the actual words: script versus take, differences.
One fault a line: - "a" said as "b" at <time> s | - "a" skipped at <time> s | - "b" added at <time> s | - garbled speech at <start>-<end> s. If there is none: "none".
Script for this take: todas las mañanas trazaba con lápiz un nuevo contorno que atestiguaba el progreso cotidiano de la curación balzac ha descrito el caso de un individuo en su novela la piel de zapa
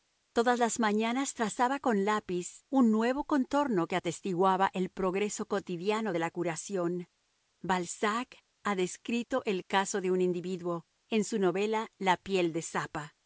none